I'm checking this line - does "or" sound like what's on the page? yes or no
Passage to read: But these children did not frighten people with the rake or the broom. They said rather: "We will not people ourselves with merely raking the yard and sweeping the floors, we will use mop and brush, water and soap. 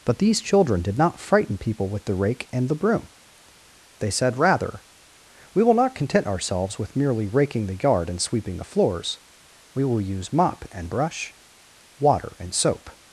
no